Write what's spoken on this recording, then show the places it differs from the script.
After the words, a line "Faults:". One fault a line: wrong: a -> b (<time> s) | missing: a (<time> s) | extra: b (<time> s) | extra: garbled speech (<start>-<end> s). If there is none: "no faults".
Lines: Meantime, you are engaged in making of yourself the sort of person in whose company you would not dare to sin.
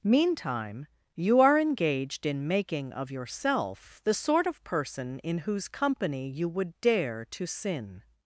Meantime, you are engaged in making of yourself the sort of person in whose company you would dare to sin.
Faults:
missing: not (6.7 s)